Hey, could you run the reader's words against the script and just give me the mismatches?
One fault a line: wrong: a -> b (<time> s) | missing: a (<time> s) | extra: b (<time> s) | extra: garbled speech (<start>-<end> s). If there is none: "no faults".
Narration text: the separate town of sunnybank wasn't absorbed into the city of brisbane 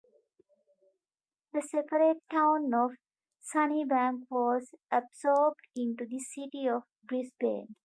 wrong: wasn't -> was (4.3 s)